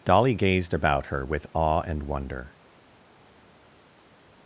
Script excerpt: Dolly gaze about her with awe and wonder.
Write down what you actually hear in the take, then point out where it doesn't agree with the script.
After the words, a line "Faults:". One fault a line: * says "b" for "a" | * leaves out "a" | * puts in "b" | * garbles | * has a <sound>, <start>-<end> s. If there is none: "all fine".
Dolly gazed about her with awe and wonder.
Faults:
* says "gazed" for "gaze"